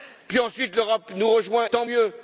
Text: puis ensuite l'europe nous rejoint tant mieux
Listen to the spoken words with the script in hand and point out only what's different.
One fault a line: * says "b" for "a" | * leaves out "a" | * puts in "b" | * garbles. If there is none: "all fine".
all fine